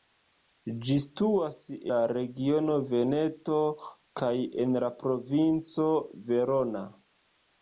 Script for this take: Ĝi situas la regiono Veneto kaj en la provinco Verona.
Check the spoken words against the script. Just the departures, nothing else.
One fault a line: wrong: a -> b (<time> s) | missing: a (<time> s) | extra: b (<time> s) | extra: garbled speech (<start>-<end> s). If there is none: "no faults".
no faults